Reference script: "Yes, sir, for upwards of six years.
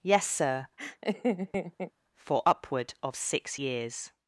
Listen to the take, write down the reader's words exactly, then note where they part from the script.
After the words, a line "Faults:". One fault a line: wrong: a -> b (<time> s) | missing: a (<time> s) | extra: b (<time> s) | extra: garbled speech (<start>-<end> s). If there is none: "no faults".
"Yes, sir, for upward of six years.
Faults:
wrong: upwards -> upward (2.4 s)